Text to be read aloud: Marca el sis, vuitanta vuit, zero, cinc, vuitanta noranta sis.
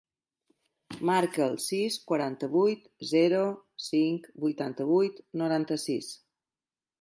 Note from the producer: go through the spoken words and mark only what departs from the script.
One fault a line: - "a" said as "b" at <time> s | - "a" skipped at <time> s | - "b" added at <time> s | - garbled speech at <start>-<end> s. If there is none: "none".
- "vuitanta" said as "quaranta" at 2.1 s
- "vuit" added at 4.9 s